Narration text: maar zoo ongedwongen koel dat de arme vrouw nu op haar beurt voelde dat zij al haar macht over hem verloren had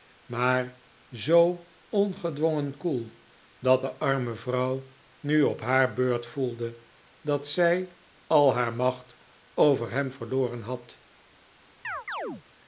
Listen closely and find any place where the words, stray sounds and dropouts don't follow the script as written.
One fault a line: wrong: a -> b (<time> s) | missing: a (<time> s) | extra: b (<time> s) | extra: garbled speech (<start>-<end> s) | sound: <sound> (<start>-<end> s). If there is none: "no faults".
sound: chirp (11.8-12.4 s)